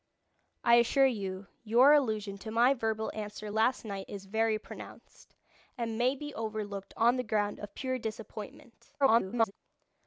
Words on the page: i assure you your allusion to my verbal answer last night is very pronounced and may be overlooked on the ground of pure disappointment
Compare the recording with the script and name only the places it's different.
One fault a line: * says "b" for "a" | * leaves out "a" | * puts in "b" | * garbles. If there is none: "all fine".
* garbles